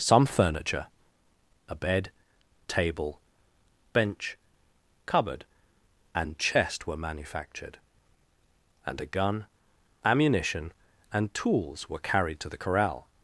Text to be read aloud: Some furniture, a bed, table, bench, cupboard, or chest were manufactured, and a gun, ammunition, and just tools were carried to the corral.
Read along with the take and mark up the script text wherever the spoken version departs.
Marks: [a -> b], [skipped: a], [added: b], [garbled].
Some furniture, a bed, table, bench, cupboard, [or -> and] chest were manufactured, and a gun, ammunition, and [skipped: just] tools were carried to the corral.